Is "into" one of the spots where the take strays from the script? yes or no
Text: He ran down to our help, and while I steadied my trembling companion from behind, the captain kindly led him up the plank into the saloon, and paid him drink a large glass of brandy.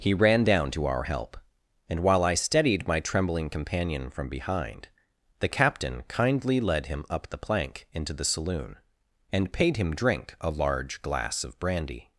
no